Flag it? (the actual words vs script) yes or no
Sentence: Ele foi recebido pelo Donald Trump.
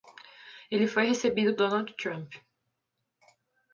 yes